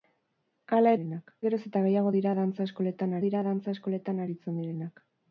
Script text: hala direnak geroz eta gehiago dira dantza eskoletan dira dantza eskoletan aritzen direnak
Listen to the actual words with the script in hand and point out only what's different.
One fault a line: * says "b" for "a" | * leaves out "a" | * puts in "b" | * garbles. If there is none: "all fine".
all fine